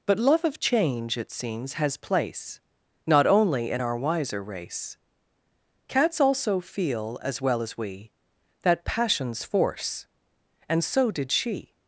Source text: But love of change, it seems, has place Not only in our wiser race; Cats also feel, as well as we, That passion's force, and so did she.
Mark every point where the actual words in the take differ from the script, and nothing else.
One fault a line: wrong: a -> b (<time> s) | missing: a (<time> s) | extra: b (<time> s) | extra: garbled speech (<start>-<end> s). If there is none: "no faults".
no faults